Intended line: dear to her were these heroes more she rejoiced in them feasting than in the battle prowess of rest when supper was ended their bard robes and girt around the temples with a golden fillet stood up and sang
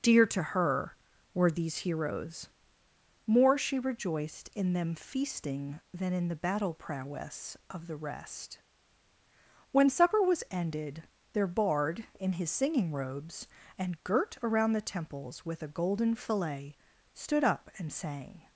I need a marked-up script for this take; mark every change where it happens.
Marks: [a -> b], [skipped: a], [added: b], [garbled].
dear to her were these heroes more she rejoiced in them feasting than in the battle prowess of [added: the] rest when supper was ended their bard [added: in his singing] robes and girt around the temples with a golden fillet stood up and sang